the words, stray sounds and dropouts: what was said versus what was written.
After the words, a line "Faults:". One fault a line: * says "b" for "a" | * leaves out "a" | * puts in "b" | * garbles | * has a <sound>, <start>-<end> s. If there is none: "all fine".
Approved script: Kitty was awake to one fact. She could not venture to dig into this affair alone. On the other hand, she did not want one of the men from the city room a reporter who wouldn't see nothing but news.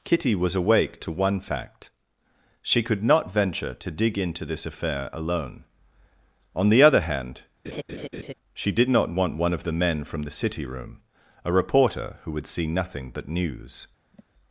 Kitty was awake to one fact. She could not venture to dig into this affair alone. On the other hand, she did not want one of the men from the city room a reporter who would see nothing but news.
Faults:
* has a laugh, 7.6-8.3 s
* says "would" for "wouldn't"
* has a sigh, 14.1-14.2 s